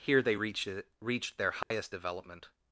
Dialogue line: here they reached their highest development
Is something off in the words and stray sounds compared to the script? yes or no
yes